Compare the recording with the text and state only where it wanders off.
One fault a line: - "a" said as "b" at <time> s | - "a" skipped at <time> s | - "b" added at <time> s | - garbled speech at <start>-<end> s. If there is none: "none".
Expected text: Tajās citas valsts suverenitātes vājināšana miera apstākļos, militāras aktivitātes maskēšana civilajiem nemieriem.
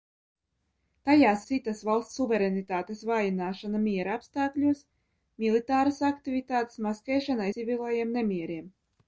none